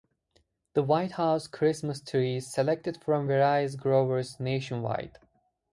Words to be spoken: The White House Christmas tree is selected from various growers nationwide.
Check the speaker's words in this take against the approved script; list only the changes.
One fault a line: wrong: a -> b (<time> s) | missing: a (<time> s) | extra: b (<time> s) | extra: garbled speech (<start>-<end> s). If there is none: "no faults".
no faults